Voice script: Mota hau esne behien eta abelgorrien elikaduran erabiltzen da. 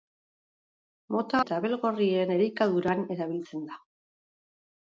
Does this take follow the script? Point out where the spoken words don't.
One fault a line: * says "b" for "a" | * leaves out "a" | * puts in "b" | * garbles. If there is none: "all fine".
* leaves out "hau esne behien"